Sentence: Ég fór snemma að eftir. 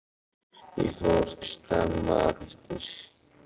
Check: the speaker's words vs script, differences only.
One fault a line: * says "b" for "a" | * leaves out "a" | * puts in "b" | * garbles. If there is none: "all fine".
all fine